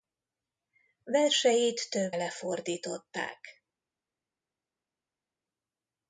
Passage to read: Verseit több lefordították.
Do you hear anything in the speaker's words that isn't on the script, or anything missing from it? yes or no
no